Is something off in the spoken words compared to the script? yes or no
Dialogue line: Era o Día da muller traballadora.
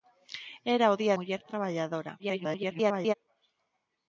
yes